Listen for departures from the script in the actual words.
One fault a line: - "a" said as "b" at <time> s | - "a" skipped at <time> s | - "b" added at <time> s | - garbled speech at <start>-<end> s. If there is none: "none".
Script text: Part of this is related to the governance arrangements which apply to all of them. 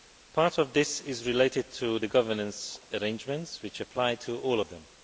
none